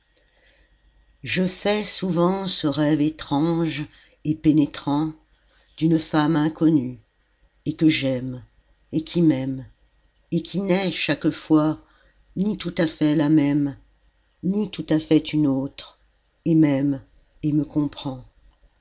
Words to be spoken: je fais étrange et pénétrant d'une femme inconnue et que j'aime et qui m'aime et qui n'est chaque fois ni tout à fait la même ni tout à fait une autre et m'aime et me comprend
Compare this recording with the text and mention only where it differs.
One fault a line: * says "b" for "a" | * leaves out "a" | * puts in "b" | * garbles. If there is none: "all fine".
* puts in "souvent ce rêve"